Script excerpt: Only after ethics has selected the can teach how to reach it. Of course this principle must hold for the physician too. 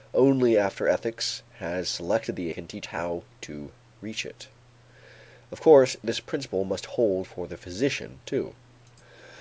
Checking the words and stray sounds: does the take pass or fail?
pass